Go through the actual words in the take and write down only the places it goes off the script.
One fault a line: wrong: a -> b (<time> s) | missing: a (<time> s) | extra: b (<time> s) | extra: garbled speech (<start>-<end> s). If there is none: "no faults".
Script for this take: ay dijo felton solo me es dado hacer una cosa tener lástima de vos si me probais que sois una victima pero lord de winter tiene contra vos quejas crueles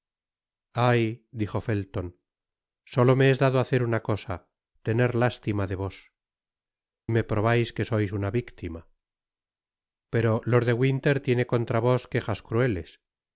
missing: si (6.1 s)